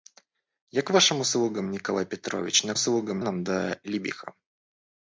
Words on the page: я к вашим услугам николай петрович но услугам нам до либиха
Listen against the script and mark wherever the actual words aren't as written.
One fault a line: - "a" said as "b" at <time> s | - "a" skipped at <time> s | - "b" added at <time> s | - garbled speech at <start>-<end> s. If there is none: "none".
none